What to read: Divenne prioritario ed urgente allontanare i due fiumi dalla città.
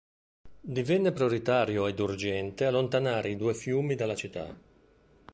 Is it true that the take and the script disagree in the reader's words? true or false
false